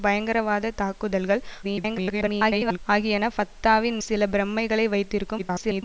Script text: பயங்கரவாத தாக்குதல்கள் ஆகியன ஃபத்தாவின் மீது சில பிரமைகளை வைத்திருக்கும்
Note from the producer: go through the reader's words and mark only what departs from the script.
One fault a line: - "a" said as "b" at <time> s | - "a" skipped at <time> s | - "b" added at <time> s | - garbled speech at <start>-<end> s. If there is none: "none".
- garbled speech at 1.6-2.8 s
- "மீது" skipped at 4.0 s
- garbled speech at 5.4-5.8 s